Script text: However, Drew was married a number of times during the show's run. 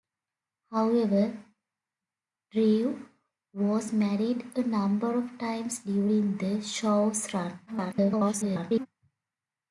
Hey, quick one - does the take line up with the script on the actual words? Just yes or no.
no